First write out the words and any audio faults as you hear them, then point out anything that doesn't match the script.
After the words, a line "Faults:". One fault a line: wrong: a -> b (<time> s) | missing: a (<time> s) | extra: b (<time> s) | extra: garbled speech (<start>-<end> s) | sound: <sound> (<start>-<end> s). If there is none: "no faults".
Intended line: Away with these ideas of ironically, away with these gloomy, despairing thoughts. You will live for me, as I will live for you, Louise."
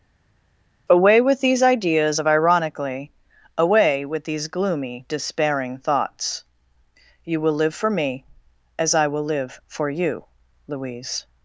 Away with these ideas of ironically, away with these gloomy, despairing thoughts. You will live for me, as I will live for you, Louise."
Faults:
no faults